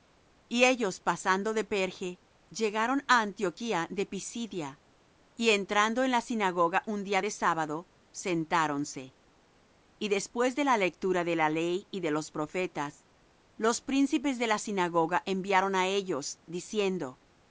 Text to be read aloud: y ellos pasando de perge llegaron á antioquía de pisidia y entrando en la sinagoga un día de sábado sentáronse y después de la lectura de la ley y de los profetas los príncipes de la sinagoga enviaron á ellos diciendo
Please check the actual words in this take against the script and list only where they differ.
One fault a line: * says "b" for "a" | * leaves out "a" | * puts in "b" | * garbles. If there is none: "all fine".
all fine